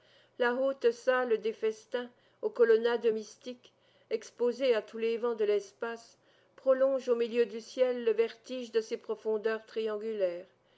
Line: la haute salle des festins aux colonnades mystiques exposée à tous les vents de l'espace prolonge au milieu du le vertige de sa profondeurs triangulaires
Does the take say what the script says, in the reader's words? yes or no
no